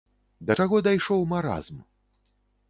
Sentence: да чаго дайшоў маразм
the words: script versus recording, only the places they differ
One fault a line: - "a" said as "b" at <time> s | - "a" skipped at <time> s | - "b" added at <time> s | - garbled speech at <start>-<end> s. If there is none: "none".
none